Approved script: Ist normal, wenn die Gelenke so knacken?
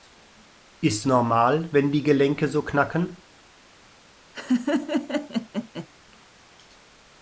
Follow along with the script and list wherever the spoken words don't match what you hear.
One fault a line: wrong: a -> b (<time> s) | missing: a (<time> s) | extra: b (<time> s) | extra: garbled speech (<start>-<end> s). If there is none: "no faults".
no faults